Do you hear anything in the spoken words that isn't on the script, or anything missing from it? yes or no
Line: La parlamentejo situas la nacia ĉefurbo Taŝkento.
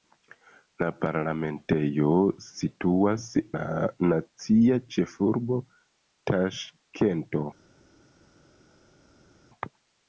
no